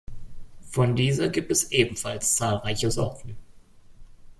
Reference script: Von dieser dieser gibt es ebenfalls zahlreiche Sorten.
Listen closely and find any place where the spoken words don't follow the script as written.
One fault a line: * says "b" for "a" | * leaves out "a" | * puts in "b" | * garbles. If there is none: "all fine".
* leaves out "dieser"